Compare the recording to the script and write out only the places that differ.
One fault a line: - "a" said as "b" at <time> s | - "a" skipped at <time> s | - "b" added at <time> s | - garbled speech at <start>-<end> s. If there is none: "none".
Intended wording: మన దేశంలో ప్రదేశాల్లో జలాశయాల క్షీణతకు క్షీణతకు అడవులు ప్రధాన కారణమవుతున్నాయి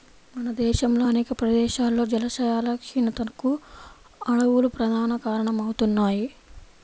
- "అనేక" added at 1.0 s
- "క్షీణతకు" skipped at 3.5 s